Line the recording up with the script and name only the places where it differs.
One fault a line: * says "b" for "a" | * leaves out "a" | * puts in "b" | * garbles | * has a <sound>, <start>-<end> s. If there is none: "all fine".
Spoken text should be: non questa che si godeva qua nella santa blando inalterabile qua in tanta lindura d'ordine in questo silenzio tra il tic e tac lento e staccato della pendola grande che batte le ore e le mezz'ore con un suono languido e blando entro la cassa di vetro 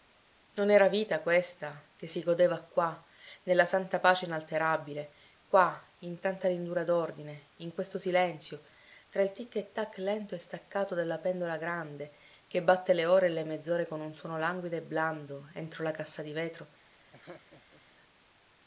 * puts in "era vita"
* says "pace" for "blando"
* has a laugh, 17.1-17.8 s